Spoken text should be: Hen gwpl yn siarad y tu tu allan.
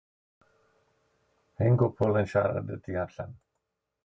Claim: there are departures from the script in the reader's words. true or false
true